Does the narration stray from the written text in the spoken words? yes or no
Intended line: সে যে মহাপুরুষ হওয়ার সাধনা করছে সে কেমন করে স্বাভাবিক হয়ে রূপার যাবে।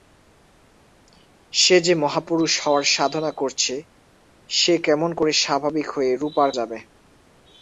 no